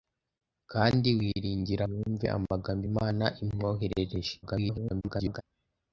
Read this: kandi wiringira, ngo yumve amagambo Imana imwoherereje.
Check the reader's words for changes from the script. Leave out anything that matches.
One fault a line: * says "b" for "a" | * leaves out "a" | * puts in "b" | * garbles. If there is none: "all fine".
* leaves out "ngo"
* garbles